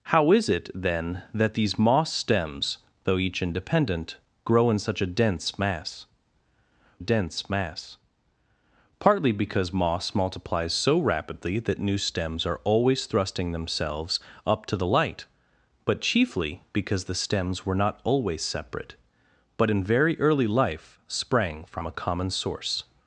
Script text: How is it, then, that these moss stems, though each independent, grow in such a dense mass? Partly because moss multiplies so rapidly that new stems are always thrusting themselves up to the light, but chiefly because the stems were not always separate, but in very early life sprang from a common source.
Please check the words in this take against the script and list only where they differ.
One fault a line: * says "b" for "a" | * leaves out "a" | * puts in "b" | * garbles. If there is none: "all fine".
* puts in "dense mass"